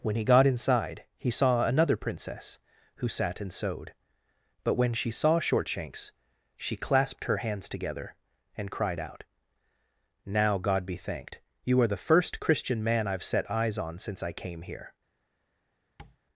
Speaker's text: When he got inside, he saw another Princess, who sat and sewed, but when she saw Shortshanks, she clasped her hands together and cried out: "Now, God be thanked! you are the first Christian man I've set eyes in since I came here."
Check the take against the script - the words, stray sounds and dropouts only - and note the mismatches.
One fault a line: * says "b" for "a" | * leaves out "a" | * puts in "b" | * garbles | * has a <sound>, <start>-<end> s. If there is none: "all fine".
* says "on" for "in"
* has a tap, 16.0-16.2 s